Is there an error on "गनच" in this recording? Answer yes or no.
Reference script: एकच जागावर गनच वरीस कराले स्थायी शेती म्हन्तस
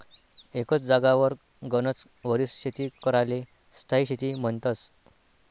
no